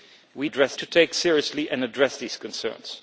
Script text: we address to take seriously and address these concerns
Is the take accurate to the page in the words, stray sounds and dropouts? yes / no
yes